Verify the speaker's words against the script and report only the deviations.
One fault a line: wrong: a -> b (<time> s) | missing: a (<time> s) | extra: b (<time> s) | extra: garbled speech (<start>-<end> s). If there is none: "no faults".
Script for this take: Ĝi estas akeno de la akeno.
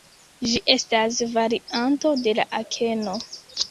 wrong: akeno -> varianto (1.4 s)